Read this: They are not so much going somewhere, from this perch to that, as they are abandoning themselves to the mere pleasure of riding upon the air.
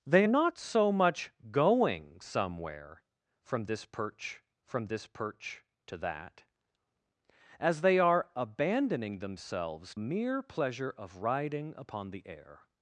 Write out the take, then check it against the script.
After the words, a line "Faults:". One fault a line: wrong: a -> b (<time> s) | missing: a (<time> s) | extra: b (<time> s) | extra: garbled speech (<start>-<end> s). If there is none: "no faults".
They not so much going somewhere, from this perch from this perch to that, as they are abandoning themselves mere pleasure of riding upon the air.
Faults:
missing: are (0.2 s)
extra: from this perch (4.6 s)
missing: to the (9.9 s)